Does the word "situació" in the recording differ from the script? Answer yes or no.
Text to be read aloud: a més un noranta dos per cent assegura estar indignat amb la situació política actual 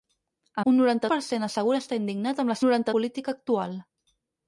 yes